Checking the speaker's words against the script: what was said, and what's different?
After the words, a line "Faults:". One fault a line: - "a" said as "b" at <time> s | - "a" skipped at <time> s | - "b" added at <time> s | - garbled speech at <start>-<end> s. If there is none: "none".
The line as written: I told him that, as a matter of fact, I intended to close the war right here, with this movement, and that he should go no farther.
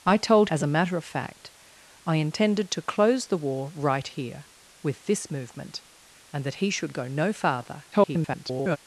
I told as a matter of fact, I intended to close the war right here, with this movement, and that he should go no farther. [garbled]
Faults:
- "him that" skipped at 0.5 s
- garbled speech at 7.9-8.8 s